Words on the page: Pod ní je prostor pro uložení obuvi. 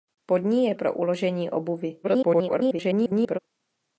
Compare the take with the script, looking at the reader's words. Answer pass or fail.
fail